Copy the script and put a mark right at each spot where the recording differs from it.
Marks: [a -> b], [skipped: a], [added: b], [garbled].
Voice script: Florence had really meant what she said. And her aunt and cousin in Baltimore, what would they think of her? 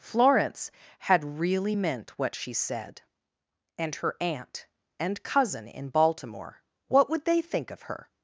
Florence had really meant what she said. And her aunt and cousin in Baltimore, what would they think of her?